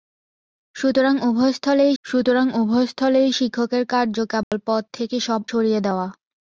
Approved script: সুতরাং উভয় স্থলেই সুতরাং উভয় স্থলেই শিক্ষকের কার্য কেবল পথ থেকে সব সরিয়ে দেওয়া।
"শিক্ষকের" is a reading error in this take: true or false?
false